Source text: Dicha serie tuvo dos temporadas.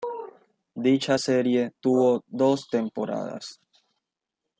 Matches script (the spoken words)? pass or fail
pass